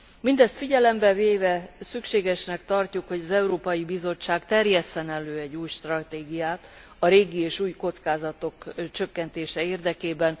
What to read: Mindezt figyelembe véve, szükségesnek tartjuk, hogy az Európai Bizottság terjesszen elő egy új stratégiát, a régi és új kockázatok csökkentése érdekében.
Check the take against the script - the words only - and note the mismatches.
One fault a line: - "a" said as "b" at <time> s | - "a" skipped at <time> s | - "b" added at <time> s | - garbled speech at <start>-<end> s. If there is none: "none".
none